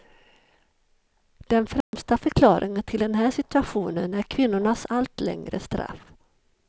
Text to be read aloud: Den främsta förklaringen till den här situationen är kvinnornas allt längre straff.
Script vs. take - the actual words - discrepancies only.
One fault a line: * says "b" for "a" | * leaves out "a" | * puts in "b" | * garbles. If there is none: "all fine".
all fine